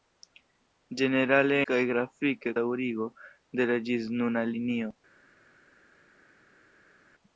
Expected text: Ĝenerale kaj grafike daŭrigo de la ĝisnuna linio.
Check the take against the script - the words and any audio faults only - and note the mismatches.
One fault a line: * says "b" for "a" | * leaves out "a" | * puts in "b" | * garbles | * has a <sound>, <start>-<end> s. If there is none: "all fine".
all fine